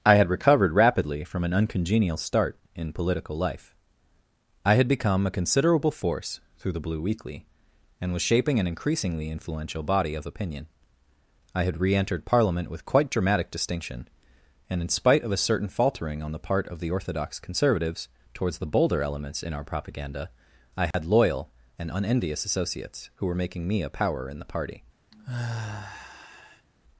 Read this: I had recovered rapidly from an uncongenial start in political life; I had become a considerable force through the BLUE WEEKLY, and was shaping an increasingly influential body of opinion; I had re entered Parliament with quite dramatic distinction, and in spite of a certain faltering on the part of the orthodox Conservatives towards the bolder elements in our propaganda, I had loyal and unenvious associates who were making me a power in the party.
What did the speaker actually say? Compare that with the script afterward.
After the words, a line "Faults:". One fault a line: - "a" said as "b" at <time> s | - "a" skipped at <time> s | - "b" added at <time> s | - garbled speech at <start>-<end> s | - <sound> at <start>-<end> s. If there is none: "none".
I had recovered rapidly from an uncongenial start in political life; I had become a considerable force through the BLUE WEEKLY, and was shaping an increasingly influential body of opinion; I had re entered Parliament with quite dramatic distinction, and in spite of a certain faltering on the part of the orthodox Conservatives towards the bolder elements in our propaganda, I had loyal and unenvious associates who were making me a power in the party.
Faults:
- dropout at 20.9-20.9 s
- sigh at 25.1-26.7 s